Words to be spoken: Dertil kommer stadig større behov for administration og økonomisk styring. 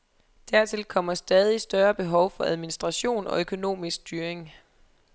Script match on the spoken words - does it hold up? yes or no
yes